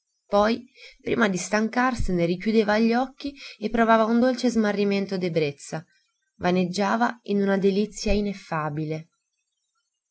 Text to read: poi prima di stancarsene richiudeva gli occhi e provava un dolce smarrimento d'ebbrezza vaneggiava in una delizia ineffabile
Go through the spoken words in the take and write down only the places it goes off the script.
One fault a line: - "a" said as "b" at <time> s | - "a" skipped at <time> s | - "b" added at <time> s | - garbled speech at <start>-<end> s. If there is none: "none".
none